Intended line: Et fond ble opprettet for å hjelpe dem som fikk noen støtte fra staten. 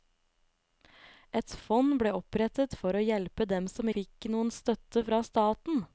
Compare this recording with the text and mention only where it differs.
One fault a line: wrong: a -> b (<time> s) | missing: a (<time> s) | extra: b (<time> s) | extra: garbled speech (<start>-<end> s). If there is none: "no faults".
no faults